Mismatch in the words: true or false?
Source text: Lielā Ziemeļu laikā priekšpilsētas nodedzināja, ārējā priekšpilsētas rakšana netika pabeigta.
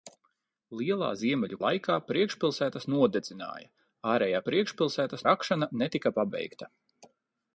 false